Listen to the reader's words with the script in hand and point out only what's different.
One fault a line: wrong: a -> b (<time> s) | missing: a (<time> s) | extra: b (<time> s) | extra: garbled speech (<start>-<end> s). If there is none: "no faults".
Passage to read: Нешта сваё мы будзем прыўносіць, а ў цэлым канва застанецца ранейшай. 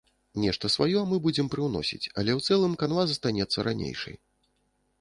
wrong: а -> але (2.2 s)